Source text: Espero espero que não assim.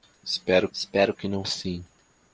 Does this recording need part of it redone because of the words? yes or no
no